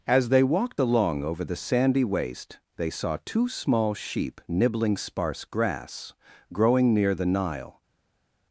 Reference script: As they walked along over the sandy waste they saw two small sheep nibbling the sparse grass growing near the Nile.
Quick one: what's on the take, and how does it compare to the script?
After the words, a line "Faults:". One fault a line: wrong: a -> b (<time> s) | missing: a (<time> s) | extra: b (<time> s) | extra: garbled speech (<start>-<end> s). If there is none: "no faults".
As they walked along over the sandy waste they saw two small sheep nibbling sparse grass growing near the Nile.
Faults:
missing: the (5.0 s)